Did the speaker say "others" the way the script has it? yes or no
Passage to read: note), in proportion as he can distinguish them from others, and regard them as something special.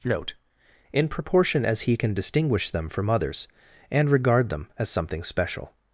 yes